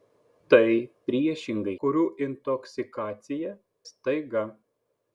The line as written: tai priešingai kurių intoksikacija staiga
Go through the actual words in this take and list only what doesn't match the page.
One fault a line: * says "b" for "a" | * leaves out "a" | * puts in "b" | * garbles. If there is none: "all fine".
all fine